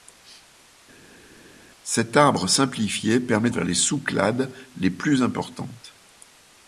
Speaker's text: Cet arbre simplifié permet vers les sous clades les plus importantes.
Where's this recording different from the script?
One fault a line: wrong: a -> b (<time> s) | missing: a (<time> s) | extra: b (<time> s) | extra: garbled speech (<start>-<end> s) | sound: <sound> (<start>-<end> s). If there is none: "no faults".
no faults